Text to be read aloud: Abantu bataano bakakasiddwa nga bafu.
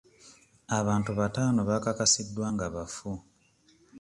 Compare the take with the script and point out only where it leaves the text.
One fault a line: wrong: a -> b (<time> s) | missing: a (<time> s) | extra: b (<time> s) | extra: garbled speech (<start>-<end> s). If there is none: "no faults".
no faults